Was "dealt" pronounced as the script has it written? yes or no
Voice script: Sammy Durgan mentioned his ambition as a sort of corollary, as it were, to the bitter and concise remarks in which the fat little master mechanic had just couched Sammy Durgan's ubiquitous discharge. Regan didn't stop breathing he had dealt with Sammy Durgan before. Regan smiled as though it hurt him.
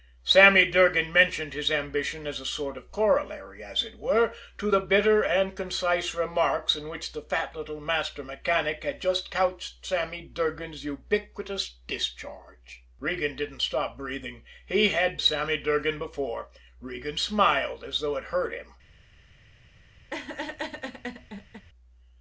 no